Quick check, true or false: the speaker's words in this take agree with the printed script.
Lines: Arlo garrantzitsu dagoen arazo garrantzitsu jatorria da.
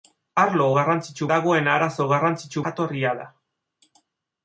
true